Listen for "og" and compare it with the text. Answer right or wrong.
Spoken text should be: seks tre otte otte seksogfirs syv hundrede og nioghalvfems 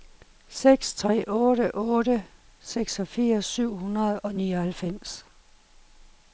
right